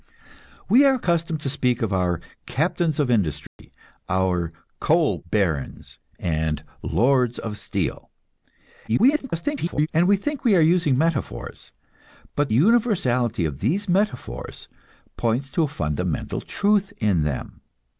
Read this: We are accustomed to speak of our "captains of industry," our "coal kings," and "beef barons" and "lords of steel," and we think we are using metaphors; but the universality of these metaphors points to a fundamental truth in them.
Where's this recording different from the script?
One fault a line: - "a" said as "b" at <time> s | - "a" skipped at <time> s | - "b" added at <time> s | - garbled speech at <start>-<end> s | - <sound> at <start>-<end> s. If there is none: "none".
- dropout at 3.5-3.6 s
- "kings and beef" skipped at 5.2 s
- garbled speech at 8.9-9.9 s
- "the" skipped at 12.5 s